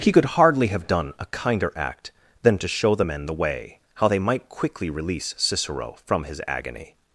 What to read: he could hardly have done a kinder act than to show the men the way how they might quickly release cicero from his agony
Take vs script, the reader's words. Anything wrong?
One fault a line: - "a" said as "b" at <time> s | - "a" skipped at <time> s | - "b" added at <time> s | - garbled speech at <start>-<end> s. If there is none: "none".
none